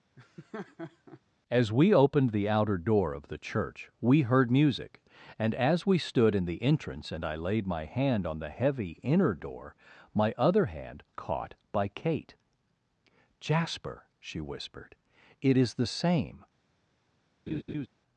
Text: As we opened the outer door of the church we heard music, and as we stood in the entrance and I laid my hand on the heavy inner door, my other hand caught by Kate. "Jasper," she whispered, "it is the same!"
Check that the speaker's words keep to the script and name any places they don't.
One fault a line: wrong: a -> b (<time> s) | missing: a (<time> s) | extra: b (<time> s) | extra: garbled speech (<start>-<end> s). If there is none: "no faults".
no faults